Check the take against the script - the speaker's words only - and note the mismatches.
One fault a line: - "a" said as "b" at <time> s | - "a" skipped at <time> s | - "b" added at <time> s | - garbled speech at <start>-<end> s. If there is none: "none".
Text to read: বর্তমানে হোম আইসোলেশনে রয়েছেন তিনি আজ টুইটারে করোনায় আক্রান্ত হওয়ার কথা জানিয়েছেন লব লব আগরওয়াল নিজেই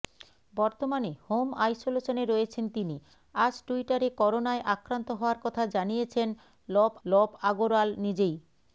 none